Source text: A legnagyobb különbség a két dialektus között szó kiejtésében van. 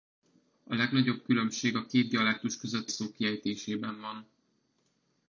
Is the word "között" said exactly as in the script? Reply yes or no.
yes